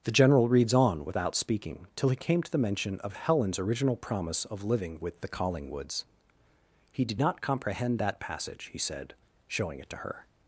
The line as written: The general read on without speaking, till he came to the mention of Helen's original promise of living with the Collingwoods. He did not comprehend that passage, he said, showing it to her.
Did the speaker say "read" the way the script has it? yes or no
no